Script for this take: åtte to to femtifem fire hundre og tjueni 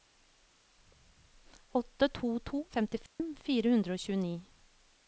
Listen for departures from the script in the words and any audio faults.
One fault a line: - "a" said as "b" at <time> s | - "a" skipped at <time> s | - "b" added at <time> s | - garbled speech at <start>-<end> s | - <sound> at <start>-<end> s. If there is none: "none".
- dropout at 3.1-3.2 s